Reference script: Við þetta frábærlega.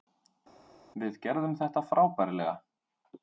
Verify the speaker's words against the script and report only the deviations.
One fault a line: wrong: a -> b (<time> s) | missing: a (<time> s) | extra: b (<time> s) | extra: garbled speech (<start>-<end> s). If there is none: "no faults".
extra: gerðum (1.3 s)